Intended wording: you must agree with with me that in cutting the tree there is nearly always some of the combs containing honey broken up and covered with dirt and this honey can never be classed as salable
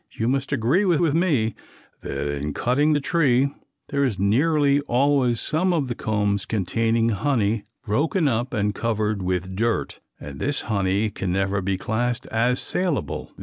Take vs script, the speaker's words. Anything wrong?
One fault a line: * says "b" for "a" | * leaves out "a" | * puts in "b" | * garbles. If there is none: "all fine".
all fine